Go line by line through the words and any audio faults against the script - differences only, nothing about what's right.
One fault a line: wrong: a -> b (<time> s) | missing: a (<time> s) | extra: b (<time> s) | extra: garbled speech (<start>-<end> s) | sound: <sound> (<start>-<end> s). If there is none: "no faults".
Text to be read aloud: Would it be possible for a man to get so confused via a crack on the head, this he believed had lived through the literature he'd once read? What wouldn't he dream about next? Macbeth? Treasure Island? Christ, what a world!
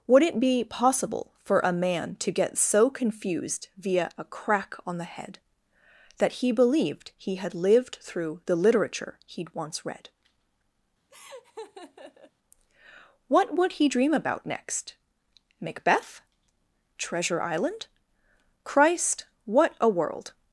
wrong: this -> that (6.2 s)
extra: he (7.2 s)
sound: laugh (11.1-12.3 s)
wrong: wouldn't -> would (13.6 s)